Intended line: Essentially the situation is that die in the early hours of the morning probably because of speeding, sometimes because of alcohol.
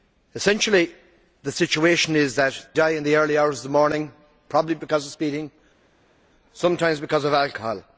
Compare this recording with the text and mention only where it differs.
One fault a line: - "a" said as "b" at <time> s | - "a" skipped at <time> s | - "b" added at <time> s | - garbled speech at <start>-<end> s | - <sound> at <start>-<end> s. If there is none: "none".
none